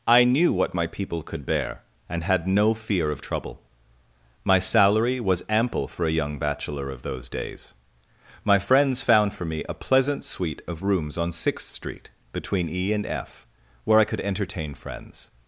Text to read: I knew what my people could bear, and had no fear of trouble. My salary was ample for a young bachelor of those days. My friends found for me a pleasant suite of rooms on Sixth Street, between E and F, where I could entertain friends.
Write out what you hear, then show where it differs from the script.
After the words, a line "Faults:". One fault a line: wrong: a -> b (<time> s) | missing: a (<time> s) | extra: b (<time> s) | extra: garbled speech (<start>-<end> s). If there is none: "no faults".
I knew what my people could bear, and had no fear of trouble. My salary was ample for a young bachelor of those days. My friends found for me a pleasant suite of rooms on Sixth Street, between E and F, where I could entertain friends.
Faults:
no faults